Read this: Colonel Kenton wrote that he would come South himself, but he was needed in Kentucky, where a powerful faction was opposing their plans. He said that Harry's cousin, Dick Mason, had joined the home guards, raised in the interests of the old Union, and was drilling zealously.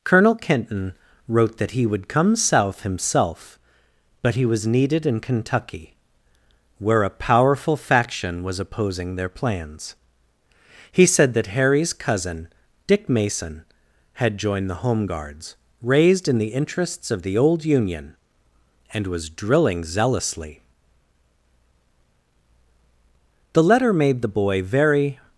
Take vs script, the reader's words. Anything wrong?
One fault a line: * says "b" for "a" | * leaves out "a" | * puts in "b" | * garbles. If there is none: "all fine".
* puts in "The letter made the boy very"